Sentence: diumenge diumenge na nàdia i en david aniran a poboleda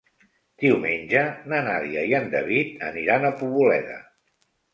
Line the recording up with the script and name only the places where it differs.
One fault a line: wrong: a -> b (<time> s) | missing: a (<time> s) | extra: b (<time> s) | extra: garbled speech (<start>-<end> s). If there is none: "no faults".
missing: diumenge (1.2 s)